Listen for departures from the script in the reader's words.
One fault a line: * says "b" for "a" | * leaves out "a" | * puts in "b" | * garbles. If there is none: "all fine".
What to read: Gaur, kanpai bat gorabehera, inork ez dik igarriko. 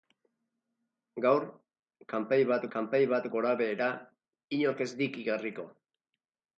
* puts in "kanpai bat"